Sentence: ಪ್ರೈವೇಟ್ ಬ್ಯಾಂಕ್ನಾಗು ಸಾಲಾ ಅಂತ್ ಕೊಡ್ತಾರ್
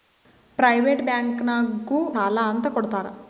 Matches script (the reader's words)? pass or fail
pass